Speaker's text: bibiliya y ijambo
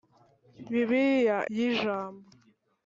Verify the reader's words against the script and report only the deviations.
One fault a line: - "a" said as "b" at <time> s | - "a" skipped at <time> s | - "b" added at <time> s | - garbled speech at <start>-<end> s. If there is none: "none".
none